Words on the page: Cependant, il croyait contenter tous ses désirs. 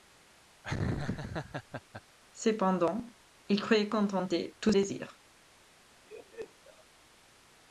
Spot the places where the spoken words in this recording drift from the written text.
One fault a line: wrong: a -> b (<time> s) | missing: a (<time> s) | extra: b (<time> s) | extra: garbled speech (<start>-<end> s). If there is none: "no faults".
missing: ses (4.7 s)